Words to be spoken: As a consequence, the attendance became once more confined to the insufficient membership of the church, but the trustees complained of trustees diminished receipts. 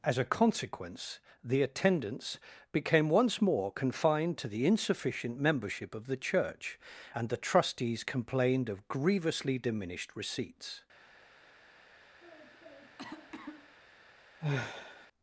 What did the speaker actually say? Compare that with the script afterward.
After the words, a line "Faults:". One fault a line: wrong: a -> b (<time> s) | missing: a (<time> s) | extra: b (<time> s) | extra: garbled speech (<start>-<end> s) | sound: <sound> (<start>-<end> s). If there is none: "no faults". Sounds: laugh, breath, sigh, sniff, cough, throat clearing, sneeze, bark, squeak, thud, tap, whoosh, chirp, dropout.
As a consequence, the attendance became once more confined to the insufficient membership of the church, and the trustees complained of grievously diminished receipts.
Faults:
wrong: but -> and (7.1 s)
wrong: trustees -> grievously (8.9 s)
sound: cough (12.2-13.7 s)
sound: sigh (14.4-15.1 s)